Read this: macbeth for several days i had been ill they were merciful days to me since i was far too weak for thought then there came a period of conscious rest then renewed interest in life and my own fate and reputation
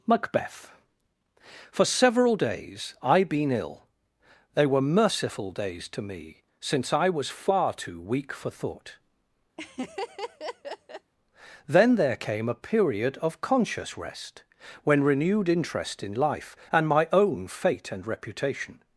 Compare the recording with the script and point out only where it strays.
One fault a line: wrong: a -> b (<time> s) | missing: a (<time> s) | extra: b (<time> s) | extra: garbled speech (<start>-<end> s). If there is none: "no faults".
missing: had (3.2 s)
wrong: then -> when (14.8 s)